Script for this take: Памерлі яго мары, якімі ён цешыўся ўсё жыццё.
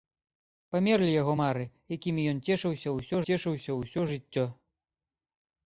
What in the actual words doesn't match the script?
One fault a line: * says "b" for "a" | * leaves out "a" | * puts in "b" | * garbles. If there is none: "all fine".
* puts in "цешыўся ўсё"